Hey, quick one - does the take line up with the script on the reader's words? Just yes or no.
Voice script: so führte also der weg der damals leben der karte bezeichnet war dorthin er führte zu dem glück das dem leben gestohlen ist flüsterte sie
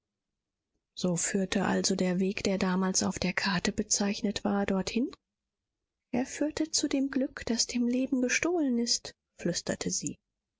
no